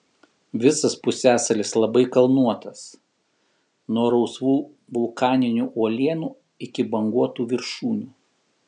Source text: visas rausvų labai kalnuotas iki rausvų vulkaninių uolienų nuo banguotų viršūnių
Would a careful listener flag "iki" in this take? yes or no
yes